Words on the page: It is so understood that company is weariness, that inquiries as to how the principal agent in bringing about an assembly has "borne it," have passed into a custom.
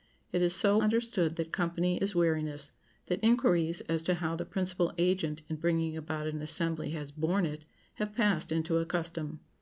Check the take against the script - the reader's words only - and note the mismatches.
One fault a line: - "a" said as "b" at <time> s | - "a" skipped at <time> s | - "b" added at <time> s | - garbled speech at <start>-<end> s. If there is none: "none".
none